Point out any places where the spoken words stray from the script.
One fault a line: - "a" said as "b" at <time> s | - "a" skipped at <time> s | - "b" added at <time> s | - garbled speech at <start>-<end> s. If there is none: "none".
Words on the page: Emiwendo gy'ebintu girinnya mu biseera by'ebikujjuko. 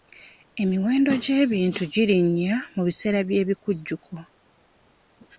none